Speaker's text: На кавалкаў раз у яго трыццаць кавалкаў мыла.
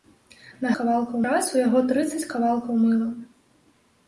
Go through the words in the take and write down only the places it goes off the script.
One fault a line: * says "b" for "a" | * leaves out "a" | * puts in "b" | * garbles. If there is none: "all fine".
all fine